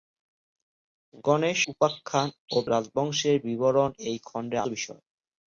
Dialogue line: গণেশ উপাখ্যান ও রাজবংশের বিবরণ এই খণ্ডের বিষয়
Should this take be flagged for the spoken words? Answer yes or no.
no